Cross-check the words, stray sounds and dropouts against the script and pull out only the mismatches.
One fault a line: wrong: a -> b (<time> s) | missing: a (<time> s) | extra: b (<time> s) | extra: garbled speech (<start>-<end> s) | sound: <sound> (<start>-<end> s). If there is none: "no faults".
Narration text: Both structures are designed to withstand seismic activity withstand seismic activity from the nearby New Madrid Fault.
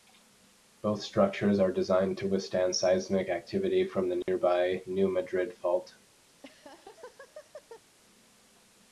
missing: withstand seismic activity (3.9 s)
sound: dropout (4.2-4.3 s)
sound: laugh (6.3-7.8 s)